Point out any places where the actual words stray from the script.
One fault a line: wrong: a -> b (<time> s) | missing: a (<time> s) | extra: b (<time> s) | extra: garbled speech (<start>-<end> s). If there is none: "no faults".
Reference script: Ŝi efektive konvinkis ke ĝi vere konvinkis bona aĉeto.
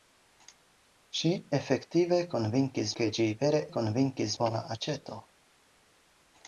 no faults